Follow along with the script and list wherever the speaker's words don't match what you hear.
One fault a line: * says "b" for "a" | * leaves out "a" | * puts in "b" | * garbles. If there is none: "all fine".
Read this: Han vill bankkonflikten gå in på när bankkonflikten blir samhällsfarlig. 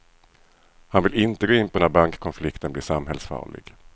* says "inte" for "bankkonflikten"